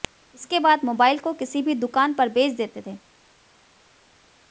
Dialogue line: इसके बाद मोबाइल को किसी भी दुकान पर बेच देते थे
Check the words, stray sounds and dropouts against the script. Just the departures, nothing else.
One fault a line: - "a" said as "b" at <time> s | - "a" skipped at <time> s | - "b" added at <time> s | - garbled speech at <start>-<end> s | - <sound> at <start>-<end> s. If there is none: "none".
none